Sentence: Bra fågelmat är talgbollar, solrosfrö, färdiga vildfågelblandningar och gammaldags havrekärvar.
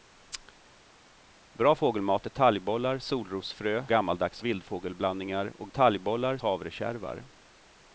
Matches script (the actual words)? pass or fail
fail